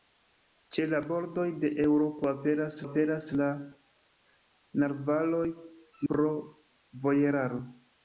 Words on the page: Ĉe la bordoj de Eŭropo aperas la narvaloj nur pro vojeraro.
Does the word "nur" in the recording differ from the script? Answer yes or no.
yes